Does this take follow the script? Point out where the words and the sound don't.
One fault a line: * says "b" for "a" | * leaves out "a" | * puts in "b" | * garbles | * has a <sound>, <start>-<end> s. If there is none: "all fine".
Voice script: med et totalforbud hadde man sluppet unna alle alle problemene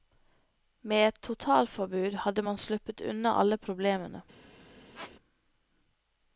* leaves out "alle"
* has a squeak, 4.9-5.2 s